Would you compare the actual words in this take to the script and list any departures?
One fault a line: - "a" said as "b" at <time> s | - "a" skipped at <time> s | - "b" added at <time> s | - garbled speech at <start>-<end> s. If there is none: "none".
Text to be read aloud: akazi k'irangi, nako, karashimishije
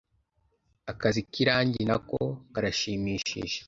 none